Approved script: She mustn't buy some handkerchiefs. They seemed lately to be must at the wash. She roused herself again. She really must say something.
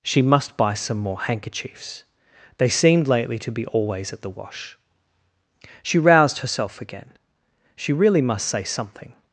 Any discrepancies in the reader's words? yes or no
yes